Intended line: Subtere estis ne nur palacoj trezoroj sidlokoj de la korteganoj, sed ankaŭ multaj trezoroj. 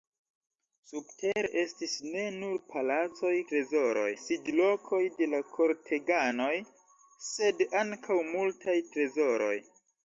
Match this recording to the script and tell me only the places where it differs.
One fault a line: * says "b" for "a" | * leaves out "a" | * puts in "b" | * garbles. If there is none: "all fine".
all fine